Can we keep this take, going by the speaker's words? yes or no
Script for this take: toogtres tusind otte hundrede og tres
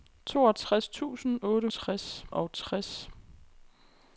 no